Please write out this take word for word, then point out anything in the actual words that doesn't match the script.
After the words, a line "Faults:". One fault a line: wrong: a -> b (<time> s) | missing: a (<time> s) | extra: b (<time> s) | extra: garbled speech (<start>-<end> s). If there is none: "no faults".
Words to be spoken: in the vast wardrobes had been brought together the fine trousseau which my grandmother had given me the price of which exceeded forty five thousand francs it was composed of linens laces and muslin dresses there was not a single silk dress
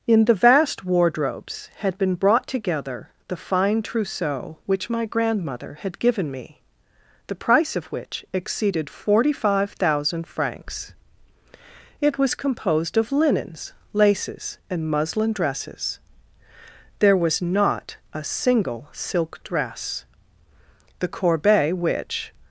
in the vast wardrobes had been brought together the fine trousseau which my grandmother had given me the price of which exceeded forty five thousand francs it was composed of linens laces and muslin dresses there was not a single silk dress the corbeille which
Faults:
extra: the corbeille which (21.0 s)